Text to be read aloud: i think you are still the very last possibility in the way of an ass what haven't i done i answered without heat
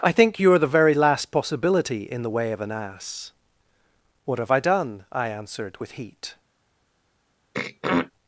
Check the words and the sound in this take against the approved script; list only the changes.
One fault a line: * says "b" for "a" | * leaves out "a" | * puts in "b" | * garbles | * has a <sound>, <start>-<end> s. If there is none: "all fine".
* leaves out "still"
* says "have" for "haven't"
* says "with" for "without"
* has a throat clearing, 7.5-8.1 s